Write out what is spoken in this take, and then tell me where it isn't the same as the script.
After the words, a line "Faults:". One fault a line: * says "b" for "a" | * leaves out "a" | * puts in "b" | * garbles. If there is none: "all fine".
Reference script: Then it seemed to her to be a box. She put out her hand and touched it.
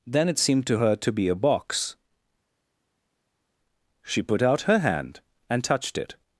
Then it seemed to her to be a box. She put out her hand and touched it.
Faults:
all fine